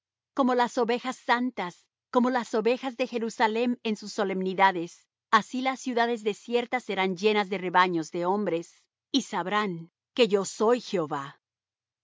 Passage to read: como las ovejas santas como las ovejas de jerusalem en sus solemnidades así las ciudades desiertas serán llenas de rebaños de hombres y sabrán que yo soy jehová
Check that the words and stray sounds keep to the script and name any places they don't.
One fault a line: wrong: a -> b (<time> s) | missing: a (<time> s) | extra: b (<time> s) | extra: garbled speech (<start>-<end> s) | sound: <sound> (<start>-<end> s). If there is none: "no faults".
no faults